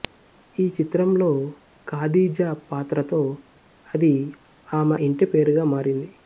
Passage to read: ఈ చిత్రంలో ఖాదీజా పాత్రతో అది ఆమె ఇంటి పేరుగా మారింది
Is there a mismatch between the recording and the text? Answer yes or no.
no